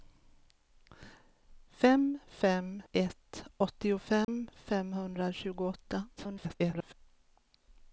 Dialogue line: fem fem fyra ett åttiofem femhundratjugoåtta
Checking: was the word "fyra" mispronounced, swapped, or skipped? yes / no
yes